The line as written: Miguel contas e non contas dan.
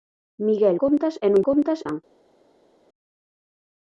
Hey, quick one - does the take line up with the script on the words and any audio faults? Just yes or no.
yes